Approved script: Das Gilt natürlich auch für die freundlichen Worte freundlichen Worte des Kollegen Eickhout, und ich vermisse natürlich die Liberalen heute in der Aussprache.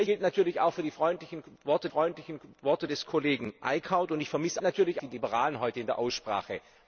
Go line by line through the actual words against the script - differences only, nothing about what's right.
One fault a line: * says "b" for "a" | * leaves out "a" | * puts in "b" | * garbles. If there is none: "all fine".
all fine